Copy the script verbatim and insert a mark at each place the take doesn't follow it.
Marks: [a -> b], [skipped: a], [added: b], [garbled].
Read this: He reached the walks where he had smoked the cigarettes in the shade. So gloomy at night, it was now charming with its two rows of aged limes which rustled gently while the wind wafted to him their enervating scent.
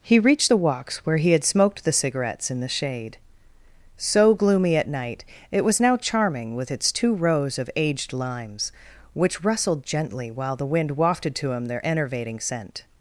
He reached the walks where he had smoked the cigarettes in the shade. So gloomy at night, it was now charming with its two rows of aged limes which rustled gently while the wind wafted to him their enervating scent.